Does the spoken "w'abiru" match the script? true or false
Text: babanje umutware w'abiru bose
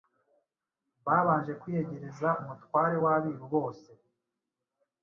true